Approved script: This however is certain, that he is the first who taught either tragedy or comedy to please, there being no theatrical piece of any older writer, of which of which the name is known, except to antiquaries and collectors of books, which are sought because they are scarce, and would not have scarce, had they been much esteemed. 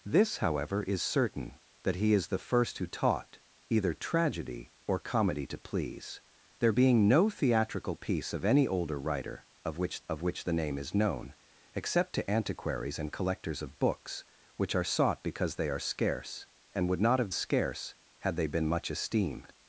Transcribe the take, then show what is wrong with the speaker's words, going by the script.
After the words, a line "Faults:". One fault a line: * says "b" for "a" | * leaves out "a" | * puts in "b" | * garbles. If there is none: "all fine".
This however is certain, that he is the first who taught either tragedy or comedy to please, there being no theatrical piece of any older writer, of which of which the name is known, except to antiquaries and collectors of books, which are sought because they are scarce, and would not have scarce, had they been much esteemed.
Faults:
all fine